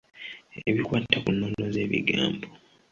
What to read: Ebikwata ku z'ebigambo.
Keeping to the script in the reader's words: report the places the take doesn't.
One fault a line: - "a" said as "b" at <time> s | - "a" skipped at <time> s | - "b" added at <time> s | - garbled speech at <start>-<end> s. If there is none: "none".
- "nnono" added at 1.3 s